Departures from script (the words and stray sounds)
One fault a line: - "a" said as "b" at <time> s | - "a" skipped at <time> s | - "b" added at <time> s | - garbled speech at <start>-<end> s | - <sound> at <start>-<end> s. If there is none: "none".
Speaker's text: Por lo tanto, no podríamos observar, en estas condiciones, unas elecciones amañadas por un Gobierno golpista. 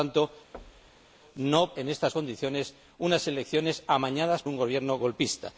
- thud at 0.5-1.1 s
- "podríamos observar" skipped at 1.7 s
- "por" skipped at 4.4 s